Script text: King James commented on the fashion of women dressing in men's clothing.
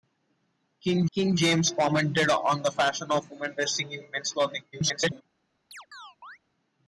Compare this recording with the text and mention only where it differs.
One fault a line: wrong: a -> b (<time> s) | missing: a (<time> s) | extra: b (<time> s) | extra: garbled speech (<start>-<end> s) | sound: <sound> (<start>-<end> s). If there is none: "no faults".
extra: king (1.1 s)
extra: garbled speech (4.7-5.2 s)
sound: chirp (5.7-6.4 s)